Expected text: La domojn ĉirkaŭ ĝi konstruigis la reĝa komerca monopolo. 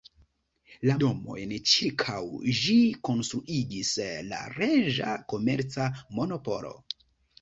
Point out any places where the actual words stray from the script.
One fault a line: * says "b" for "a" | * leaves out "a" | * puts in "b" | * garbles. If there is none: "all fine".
all fine